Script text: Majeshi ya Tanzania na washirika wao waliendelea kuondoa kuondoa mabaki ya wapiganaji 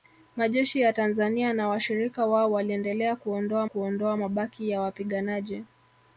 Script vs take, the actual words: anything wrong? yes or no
no